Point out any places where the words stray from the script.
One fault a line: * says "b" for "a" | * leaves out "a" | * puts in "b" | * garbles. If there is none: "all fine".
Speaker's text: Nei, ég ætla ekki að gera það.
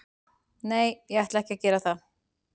all fine